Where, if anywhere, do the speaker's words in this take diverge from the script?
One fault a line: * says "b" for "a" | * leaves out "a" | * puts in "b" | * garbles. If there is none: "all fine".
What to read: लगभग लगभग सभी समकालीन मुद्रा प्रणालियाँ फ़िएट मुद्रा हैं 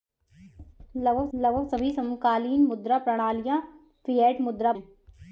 all fine